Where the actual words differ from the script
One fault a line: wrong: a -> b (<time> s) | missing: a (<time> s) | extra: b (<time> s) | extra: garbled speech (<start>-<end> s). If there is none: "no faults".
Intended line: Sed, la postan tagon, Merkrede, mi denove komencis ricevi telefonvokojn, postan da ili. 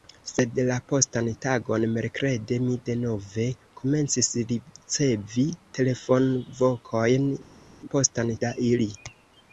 no faults